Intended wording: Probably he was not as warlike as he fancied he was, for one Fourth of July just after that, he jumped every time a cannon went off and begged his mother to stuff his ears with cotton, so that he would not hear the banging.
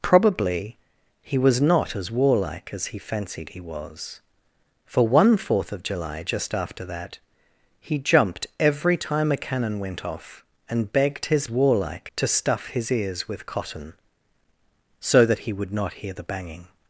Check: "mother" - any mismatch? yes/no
yes